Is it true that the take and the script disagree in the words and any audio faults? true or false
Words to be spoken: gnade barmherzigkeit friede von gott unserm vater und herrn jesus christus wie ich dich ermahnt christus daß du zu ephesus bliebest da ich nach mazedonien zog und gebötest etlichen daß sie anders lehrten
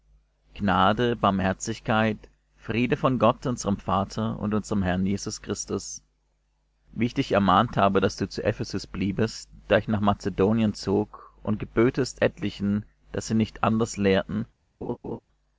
true